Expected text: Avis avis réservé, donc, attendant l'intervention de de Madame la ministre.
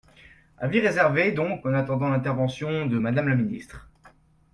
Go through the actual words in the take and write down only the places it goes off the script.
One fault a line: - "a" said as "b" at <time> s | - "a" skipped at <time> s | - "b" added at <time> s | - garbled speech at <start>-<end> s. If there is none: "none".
- "avis" skipped at 0.8 s
- "en" added at 1.6 s
- "de" skipped at 3.0 s